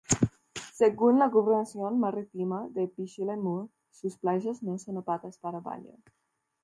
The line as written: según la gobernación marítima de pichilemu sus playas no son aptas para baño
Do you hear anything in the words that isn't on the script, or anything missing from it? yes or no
no